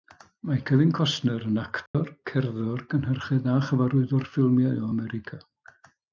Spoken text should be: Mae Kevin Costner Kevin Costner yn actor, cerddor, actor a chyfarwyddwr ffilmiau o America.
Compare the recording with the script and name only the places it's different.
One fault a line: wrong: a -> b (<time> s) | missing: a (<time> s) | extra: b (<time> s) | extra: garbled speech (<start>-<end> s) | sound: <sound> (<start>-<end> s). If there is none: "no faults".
missing: Kevin Costner (1.4 s)
sound: dropout (1.9-1.9 s)
wrong: actor -> cynhyrchydd (3.0 s)